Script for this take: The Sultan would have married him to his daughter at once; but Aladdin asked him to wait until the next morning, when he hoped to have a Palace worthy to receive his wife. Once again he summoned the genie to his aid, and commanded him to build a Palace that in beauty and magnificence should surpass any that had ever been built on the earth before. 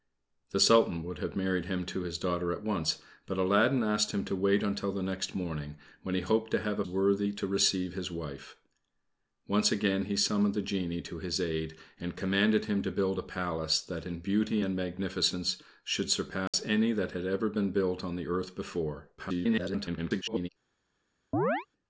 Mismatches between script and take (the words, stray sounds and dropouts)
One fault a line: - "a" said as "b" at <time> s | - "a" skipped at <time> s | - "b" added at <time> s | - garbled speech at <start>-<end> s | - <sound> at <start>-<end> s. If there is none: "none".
- "Palace" skipped at 6.8 s
- dropout at 16.5-16.5 s
- garbled speech at 19.2-20.5 s
- chirp at 21.3-21.7 s